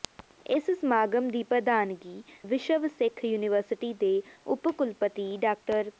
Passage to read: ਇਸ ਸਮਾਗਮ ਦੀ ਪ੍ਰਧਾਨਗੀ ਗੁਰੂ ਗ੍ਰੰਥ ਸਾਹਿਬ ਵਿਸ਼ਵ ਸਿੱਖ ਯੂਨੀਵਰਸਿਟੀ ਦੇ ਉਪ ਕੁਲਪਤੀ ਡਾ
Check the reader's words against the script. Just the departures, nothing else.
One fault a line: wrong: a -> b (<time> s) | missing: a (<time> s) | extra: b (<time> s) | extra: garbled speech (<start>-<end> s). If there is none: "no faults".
missing: ਗੁਰੂ ਗ੍ਰੰਥ ਸਾਹਿਬ (2.2 s)